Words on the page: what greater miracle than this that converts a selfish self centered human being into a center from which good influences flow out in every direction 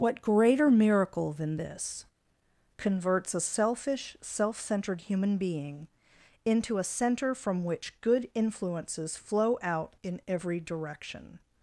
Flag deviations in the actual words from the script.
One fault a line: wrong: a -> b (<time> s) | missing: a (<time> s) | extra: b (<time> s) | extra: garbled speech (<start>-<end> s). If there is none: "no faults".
missing: that (2.1 s)